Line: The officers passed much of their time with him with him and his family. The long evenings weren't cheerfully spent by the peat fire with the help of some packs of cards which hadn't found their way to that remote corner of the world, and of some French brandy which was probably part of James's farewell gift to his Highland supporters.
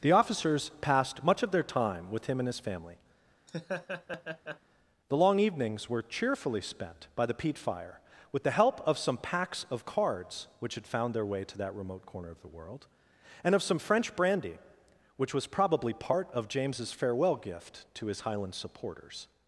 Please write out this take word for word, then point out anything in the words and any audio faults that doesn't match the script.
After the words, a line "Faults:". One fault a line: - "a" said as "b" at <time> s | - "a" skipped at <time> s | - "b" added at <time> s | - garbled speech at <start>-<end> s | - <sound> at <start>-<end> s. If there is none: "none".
The officers passed much of their time with him and his family. The long evenings were cheerfully spent by the peat fire with the help of some packs of cards which had found their way to that remote corner of the world, and of some French brandy which was probably part of James's farewell gift to his Highland supporters.
Faults:
- "with him" skipped at 2.4 s
- laugh at 3.5-4.6 s
- "weren't" said as "were" at 5.9 s
- "hadn't" said as "had" at 10.7 s